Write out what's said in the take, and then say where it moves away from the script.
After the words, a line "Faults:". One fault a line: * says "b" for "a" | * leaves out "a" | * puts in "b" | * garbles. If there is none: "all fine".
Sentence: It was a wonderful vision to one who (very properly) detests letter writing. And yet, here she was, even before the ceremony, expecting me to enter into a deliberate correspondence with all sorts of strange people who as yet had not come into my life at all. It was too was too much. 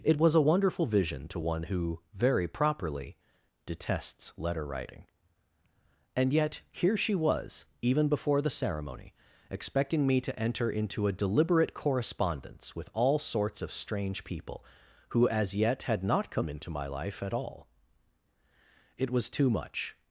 It was a wonderful vision to one who (very properly) detests letter writing. And yet, here she was, even before the ceremony, expecting me to enter into a deliberate correspondence with all sorts of strange people who as yet had not come into my life at all. It was too much.
Faults:
* leaves out "was too"